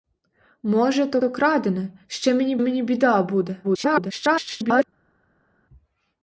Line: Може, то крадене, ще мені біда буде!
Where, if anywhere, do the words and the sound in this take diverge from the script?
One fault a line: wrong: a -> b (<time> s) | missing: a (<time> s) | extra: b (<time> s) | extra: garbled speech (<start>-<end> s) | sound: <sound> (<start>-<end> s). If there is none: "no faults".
extra: то (1.1 s)
extra: мені (2.6 s)
extra: garbled speech (3.6-4.8 s)